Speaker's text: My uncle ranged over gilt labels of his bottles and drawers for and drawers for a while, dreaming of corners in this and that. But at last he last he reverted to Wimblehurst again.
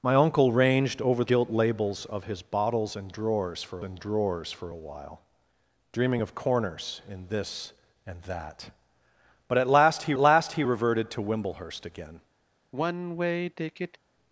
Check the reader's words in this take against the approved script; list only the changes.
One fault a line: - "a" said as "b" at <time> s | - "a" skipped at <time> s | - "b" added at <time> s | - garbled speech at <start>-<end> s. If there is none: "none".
none